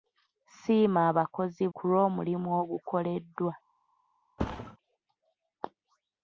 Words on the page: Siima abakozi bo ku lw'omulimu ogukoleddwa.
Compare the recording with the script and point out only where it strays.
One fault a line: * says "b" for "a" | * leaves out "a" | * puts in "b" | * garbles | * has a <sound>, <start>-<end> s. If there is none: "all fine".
* leaves out "bo"
* has a thud, 4.4-4.8 s